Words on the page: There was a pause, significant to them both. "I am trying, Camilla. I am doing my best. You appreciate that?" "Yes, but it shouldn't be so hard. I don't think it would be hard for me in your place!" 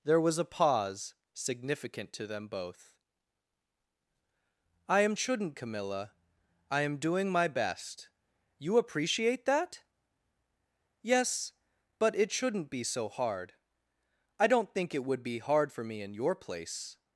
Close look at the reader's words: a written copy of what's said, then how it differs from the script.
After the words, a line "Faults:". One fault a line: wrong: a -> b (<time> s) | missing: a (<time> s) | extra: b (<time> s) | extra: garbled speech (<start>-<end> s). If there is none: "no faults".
There was a pause, significant to them both. "I am shouldn't, Camilla. I am doing my best. You appreciate that?" "Yes, but it shouldn't be so hard. I don't think it would be hard for me in your place!"
Faults:
wrong: trying -> shouldn't (5.2 s)